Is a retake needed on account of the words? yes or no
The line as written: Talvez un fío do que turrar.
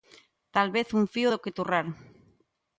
no